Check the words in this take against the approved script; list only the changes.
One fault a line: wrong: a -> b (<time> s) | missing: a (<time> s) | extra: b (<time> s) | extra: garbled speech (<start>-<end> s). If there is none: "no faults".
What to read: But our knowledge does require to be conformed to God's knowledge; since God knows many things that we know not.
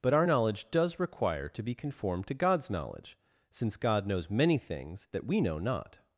no faults